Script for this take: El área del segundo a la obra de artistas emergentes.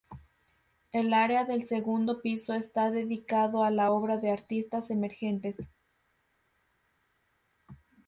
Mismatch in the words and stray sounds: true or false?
true